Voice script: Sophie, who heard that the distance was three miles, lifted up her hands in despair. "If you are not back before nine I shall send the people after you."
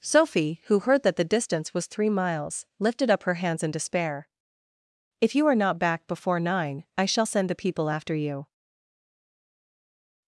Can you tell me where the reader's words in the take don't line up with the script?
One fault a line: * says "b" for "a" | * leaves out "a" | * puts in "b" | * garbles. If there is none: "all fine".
all fine